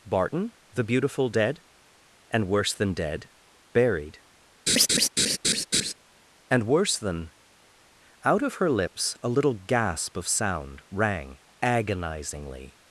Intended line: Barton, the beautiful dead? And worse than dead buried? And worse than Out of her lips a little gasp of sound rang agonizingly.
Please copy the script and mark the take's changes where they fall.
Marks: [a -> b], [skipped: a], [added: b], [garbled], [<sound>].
Barton, the beautiful dead? And worse than dead buried? [laugh] And worse than Out of her lips a little gasp of sound rang agonizingly.